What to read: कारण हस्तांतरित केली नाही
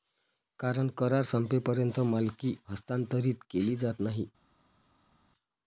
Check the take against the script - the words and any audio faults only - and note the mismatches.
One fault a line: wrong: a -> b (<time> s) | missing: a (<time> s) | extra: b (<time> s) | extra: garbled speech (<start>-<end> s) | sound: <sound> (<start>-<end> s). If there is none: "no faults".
extra: करार संपेपर्यंत मालकी (1.0 s)
extra: जात (3.8 s)